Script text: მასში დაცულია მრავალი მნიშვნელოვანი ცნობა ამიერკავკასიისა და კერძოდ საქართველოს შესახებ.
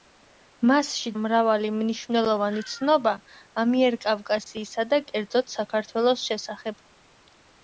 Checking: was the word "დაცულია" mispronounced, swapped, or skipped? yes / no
yes